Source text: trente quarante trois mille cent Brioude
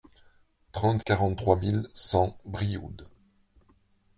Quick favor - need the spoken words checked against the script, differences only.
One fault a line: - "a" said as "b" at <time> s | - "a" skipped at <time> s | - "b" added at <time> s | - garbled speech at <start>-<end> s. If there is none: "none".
none